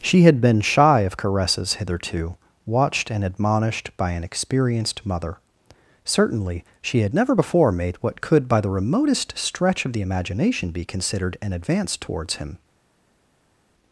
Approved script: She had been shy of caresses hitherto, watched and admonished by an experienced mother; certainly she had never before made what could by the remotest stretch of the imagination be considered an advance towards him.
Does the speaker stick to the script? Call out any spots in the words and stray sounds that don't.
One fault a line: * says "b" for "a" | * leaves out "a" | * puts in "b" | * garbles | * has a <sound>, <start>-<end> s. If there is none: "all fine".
all fine